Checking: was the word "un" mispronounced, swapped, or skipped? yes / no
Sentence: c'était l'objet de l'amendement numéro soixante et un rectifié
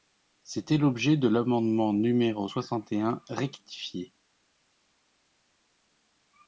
no